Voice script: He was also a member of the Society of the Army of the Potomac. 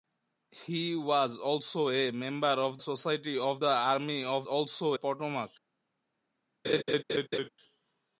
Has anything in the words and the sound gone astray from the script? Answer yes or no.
yes